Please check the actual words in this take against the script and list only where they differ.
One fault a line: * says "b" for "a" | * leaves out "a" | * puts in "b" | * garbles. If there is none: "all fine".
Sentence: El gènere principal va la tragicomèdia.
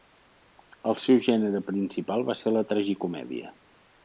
* puts in "seu"
* puts in "ser"